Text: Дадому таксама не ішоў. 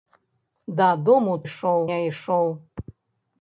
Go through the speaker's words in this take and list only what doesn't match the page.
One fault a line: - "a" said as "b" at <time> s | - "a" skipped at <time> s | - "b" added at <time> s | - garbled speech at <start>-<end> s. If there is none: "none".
- "таксама" said as "ішоў" at 1.5 s